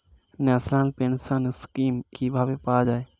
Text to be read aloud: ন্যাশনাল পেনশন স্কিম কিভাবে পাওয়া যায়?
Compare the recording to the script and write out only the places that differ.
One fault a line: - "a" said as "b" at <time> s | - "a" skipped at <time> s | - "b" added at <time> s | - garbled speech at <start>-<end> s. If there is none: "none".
none